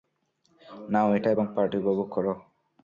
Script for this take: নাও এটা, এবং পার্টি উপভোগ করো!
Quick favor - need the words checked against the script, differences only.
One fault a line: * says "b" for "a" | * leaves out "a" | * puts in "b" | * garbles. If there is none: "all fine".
all fine